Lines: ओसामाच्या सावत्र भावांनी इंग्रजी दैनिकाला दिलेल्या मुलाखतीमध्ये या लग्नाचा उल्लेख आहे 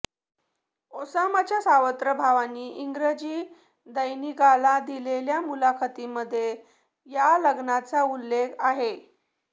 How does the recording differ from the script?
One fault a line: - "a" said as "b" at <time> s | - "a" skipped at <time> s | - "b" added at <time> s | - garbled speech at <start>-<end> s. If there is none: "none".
none